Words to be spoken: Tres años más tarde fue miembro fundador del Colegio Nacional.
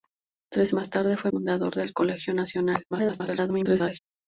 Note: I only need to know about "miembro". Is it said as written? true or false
false